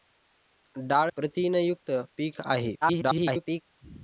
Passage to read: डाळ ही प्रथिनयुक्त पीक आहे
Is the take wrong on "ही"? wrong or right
wrong